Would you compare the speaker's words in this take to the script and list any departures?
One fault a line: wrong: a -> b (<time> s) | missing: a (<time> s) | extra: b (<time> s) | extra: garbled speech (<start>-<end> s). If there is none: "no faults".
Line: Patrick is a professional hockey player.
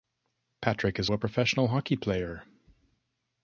no faults